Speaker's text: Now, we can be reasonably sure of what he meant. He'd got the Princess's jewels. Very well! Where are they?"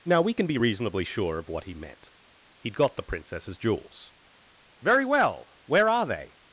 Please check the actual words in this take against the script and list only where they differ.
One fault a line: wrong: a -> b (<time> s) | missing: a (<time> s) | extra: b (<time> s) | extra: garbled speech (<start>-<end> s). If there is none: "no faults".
no faults